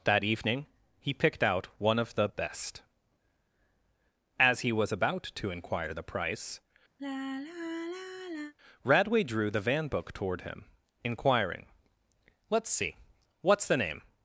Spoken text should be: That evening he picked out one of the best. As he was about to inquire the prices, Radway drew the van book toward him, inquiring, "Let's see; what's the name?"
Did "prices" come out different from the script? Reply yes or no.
yes